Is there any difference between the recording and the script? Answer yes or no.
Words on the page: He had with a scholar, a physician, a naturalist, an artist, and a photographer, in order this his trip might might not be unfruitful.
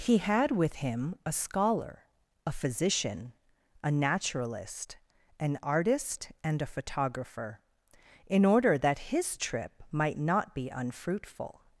yes